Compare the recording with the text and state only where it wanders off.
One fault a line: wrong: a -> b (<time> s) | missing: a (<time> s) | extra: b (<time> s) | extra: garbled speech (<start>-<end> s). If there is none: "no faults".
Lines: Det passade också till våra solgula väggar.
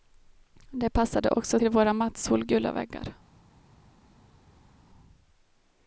extra: matt (1.9 s)